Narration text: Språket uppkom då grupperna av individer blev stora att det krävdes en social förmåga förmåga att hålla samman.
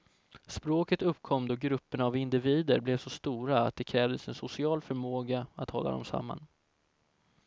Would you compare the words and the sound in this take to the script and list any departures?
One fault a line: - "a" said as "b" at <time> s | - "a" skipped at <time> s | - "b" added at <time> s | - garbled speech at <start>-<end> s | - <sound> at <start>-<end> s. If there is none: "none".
- "så" added at 3.0 s
- "förmåga" skipped at 5.5 s
- "dem" added at 5.9 s